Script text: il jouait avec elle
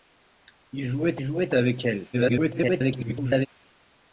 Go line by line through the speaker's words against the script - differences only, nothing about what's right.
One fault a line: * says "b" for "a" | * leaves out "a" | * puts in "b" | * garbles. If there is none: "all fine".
* puts in "jouait"
* garbles